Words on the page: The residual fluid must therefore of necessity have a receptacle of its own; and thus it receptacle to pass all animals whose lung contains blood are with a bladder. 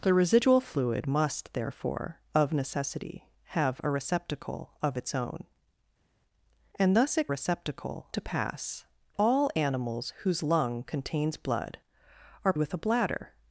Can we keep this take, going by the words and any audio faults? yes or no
yes